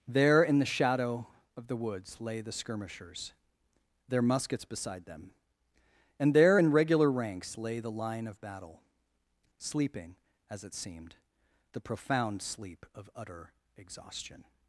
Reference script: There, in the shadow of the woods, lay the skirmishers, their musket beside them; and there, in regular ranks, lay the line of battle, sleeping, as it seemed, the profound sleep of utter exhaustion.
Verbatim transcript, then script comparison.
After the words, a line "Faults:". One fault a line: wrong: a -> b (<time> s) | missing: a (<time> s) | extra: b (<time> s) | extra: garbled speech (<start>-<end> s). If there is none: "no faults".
There, in the shadow of the woods, lay the skirmishers, their muskets beside them; and there, in regular ranks, lay the line of battle, sleeping, as it seemed, the profound sleep of utter exhaustion.
Faults:
wrong: musket -> muskets (4.2 s)